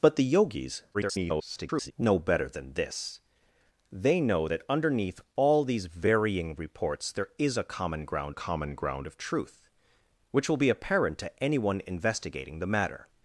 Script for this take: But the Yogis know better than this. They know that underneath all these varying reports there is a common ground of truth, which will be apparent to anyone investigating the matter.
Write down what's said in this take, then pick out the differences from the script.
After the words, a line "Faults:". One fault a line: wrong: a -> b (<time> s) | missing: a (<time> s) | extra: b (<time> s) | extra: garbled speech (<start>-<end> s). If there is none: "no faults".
But the Yogis [garbled] know better than this. They know that underneath all these varying reports there is a common ground common ground of truth, which will be apparent to anyone investigating the matter.
Faults:
extra: garbled speech (0.9-1.9 s)
extra: common ground (8.3 s)